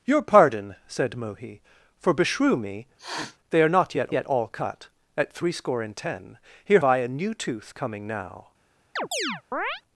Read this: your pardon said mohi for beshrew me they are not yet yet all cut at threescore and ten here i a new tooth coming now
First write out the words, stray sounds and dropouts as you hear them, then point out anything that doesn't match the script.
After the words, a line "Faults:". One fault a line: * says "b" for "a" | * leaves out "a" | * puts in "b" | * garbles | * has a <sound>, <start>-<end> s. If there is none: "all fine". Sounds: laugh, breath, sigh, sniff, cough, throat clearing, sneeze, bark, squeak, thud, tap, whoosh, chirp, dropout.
your pardon said mohi for beshrew me they are not yet yet all cut at threescore and ten here i a new tooth coming now
Faults:
* has a sniff, 3.0-3.4 s
* has a chirp, 9.0-9.8 s